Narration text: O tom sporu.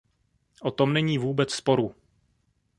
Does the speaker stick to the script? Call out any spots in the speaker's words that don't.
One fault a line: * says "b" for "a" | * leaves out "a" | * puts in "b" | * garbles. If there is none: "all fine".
* puts in "není vůbec"